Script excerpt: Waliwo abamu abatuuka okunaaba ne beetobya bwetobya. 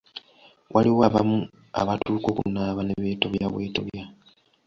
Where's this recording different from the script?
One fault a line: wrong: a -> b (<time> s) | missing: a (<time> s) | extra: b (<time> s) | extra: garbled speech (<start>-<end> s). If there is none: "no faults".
no faults